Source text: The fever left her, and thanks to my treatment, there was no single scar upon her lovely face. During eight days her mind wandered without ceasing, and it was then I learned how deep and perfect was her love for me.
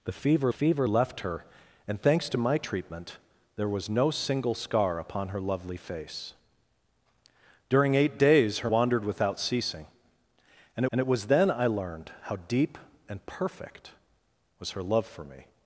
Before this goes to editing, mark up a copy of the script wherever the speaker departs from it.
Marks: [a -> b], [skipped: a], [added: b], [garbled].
The fever [added: fever] left her, and thanks to my treatment, there was no single scar upon her lovely face. During eight days her [skipped: mind] wandered without ceasing, and [added: and] it was then I learned how deep and perfect was her love for me.